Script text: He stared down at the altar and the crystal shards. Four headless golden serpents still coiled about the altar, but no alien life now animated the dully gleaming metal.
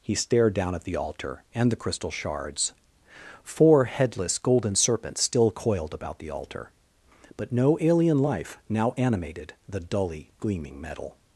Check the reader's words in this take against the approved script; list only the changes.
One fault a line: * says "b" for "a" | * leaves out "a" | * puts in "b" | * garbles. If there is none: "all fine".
all fine